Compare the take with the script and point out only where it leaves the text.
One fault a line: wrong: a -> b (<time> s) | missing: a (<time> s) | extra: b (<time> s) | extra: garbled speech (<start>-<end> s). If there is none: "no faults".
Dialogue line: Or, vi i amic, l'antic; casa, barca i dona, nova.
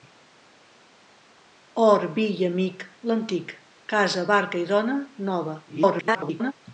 extra: garbled speech (5.7-6.5 s)